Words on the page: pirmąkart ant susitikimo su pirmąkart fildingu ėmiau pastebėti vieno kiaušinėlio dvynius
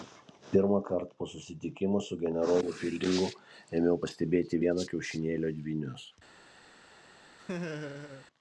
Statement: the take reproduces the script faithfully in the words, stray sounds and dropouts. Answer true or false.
false